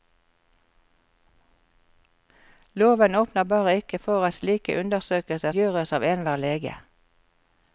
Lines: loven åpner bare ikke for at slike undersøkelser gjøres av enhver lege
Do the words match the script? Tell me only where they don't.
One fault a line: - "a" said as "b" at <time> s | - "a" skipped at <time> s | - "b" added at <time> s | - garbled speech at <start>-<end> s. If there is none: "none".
none